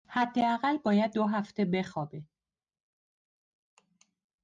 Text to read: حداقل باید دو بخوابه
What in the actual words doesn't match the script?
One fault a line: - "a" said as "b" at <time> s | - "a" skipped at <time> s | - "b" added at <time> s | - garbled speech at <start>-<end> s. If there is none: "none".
- "هفته" added at 1.2 s